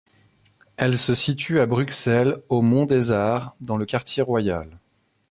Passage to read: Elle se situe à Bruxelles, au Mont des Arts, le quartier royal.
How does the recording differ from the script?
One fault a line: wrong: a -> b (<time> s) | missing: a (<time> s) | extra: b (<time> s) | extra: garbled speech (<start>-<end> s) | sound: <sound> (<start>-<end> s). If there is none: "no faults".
extra: dans (3.6 s)